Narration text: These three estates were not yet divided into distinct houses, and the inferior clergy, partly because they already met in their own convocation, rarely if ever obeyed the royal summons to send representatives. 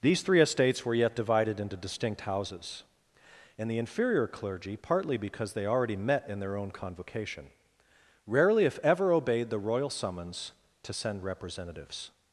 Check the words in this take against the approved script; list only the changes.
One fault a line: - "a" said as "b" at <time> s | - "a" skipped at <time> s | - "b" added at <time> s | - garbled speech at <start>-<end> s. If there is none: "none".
- "not" skipped at 0.9 s